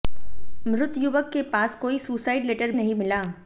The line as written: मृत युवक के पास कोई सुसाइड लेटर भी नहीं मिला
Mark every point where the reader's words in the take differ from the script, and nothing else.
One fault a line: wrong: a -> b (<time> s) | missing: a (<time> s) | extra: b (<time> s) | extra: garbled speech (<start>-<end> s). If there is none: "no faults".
missing: भी (2.7 s)